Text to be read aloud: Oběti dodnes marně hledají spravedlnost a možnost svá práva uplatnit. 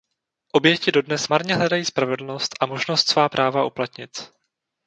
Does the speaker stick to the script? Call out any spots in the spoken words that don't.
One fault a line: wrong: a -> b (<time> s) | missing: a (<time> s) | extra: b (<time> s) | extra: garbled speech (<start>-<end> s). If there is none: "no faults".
no faults